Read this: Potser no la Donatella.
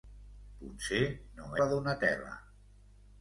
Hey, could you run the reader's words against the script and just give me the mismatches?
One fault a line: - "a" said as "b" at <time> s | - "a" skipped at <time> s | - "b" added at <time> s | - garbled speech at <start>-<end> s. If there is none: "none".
none